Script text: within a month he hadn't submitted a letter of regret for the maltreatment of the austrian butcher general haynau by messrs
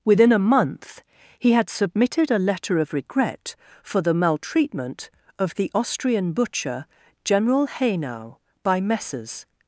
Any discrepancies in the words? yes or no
yes